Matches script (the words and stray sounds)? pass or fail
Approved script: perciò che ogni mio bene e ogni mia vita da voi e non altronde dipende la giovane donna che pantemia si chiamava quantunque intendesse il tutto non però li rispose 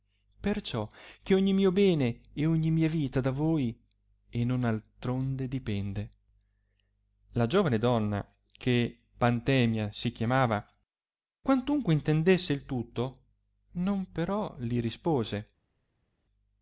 pass